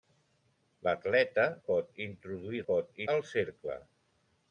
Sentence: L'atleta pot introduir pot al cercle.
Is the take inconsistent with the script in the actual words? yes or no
no